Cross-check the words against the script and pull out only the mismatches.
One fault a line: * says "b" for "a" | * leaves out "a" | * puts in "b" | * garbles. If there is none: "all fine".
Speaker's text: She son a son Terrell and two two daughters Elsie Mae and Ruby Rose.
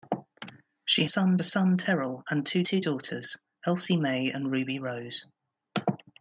all fine